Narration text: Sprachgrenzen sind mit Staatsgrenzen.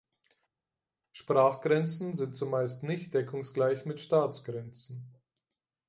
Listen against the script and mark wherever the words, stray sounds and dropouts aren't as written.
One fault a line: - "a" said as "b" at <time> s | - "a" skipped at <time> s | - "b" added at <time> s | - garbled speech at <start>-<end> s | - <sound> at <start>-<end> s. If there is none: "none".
- "zumeist nicht deckungsgleich" added at 2.3 s